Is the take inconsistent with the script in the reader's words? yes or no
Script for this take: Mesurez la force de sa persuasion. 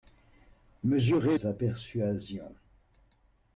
yes